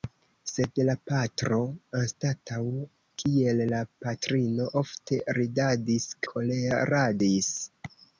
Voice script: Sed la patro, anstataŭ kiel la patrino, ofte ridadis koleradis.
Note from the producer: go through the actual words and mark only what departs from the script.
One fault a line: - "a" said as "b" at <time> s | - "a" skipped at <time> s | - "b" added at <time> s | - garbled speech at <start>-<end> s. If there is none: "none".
none